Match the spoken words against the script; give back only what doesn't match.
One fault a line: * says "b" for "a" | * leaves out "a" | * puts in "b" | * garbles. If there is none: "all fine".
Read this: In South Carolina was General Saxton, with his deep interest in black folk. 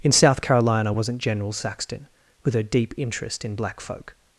* says "wasn't" for "was"
* says "her" for "his"